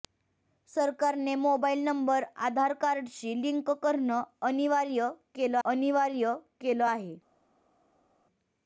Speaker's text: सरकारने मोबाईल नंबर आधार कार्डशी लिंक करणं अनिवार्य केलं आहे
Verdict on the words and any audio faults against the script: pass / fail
fail